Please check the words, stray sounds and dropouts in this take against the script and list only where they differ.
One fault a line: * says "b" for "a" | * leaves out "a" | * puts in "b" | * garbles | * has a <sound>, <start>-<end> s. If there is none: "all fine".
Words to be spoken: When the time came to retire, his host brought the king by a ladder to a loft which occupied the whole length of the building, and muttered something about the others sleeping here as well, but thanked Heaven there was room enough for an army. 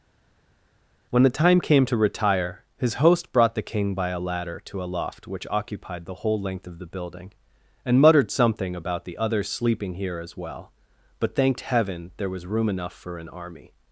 all fine